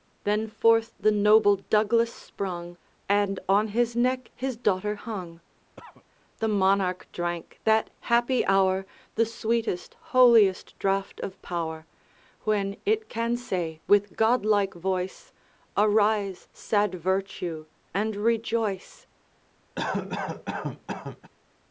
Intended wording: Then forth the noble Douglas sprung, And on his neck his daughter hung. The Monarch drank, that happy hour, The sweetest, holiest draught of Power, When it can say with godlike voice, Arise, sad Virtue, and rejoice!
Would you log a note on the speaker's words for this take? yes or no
no